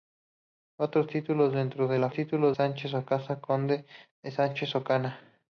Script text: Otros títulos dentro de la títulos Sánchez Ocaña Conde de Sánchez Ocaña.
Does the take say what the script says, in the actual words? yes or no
yes